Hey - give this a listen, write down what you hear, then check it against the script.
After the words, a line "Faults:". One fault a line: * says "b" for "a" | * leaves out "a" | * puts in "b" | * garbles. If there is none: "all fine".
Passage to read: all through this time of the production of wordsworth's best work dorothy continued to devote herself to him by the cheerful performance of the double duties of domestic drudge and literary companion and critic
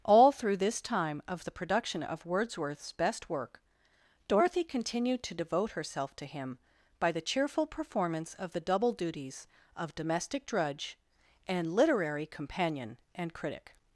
all through this time of the production of wordsworth's best work dorothy continued to devote herself to him by the cheerful performance of the double duties of domestic drudge and literary companion and critic
Faults:
all fine